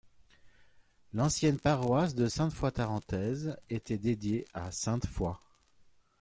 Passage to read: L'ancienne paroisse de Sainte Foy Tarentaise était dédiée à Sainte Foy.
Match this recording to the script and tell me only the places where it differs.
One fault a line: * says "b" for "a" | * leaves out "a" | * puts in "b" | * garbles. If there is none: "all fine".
all fine